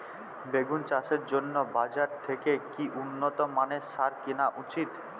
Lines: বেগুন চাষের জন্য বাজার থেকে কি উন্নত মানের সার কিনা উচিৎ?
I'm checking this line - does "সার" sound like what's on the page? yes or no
yes